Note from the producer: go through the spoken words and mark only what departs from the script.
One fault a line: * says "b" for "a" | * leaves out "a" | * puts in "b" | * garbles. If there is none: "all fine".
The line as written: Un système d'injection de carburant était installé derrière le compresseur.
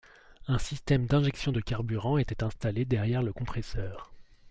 all fine